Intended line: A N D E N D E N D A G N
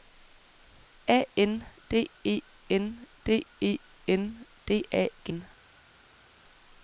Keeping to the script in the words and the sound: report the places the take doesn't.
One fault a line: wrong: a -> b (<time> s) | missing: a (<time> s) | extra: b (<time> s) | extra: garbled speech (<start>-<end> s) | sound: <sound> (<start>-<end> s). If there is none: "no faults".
no faults